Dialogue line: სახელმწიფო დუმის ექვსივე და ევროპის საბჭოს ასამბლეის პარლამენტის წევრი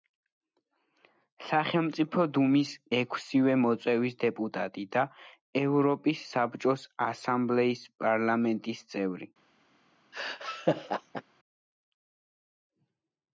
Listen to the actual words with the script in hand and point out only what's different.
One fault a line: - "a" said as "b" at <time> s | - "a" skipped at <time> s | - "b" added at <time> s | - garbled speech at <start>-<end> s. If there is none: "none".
- "მოწვევის დეპუტატი" added at 3.6 s